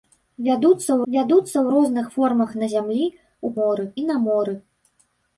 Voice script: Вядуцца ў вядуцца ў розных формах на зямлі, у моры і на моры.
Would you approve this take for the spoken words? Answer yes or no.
yes